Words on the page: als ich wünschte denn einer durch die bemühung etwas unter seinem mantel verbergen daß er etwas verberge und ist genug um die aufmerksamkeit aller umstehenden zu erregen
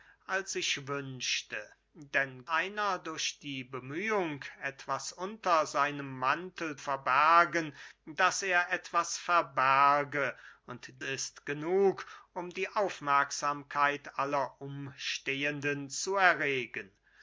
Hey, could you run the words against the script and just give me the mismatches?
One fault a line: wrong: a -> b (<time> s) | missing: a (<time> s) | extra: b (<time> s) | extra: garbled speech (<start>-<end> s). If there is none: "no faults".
no faults